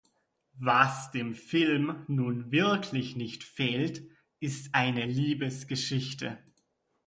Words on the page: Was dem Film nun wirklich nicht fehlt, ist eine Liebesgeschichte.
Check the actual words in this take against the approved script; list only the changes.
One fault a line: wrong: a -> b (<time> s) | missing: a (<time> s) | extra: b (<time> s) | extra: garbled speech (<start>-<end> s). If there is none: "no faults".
no faults